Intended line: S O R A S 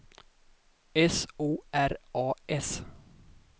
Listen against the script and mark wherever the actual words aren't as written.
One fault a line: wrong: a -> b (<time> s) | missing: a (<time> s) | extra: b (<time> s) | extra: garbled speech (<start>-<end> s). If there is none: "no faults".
no faults